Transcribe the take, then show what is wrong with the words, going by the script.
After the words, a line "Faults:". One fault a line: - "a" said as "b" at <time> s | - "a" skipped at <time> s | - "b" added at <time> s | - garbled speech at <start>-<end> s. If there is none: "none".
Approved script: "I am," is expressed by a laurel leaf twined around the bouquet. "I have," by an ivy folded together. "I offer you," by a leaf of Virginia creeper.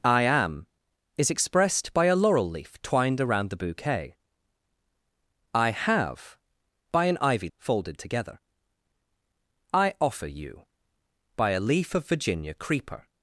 "I am," is expressed by a laurel leaf twined around the bouquet. "I have," by an ivy folded together. "I offer you," by a leaf of Virginia creeper.
Faults:
none